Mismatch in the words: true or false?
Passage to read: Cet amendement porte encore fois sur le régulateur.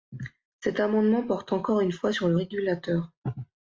true